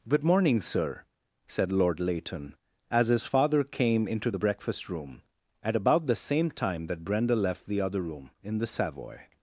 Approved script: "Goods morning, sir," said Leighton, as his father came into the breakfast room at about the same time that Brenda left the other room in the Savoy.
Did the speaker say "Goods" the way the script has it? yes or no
no